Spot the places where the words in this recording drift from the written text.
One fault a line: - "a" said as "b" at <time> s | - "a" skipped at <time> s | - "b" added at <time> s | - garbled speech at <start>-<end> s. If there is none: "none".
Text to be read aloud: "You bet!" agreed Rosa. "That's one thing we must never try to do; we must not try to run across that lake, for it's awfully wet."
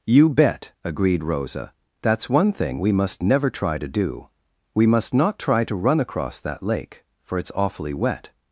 none